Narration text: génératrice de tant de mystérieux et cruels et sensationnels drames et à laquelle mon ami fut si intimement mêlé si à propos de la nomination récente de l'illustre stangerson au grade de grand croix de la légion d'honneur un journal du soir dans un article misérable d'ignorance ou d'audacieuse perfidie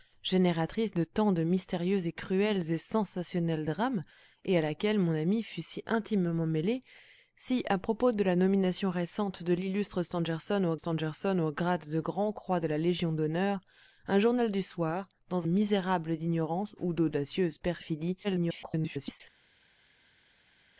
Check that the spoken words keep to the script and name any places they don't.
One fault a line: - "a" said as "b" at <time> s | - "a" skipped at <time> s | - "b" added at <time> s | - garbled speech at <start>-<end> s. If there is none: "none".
- "stangerson au" added at 10.7 s
- "un article" skipped at 15.5 s
- garbled speech at 18.2-19.2 s